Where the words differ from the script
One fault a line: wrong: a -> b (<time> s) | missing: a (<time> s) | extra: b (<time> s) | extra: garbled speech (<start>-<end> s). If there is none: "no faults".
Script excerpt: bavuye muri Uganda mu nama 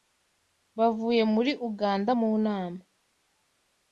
no faults